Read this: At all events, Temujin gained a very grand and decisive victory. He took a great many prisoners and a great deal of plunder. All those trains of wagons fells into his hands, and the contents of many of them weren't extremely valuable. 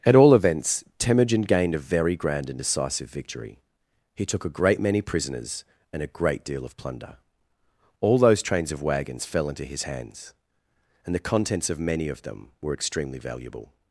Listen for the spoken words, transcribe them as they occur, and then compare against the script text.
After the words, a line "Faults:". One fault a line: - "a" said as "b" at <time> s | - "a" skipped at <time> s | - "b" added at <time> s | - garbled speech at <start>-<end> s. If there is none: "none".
At all events, Temujin gained a very grand and decisive victory. He took a great many prisoners and a great deal of plunder. All those trains of wagons fell into his hands, and the contents of many of them were extremely valuable.
Faults:
- "fells" said as "fell" at 9.2 s
- "weren't" said as "were" at 12.6 s